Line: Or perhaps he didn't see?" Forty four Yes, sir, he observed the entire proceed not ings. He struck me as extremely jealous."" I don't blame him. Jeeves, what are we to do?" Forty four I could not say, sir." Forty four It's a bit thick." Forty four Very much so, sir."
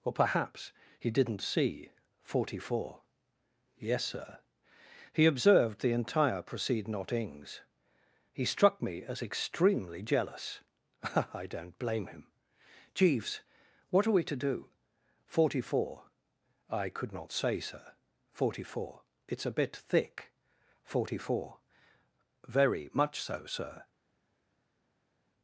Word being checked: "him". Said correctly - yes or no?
yes